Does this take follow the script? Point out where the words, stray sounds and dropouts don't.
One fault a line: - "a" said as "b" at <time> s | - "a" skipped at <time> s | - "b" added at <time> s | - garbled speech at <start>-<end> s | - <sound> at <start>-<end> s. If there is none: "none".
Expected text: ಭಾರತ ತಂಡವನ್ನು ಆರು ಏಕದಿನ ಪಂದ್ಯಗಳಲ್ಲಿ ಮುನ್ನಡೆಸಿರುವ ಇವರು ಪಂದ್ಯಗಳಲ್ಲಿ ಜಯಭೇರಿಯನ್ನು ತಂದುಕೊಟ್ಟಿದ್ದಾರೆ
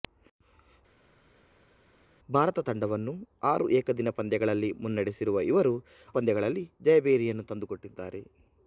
none